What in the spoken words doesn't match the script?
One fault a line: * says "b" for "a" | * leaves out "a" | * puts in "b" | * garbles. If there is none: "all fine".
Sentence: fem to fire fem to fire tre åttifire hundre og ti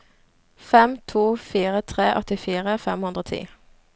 * leaves out "fem to fire"
* puts in "fem"